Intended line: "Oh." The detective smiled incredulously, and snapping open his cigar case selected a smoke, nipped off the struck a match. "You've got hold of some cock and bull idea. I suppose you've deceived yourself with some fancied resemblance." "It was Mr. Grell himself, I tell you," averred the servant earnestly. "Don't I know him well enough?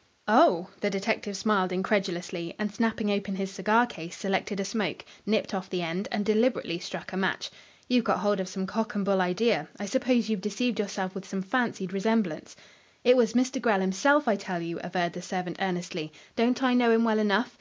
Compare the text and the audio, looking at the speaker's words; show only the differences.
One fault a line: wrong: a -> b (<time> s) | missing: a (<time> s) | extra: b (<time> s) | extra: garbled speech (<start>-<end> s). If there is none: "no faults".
extra: end and deliberately (5.8 s)